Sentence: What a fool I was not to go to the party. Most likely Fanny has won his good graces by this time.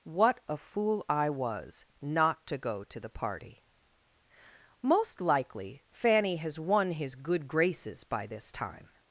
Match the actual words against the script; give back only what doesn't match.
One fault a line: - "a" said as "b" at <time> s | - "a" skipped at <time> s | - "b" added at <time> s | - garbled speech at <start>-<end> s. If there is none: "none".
none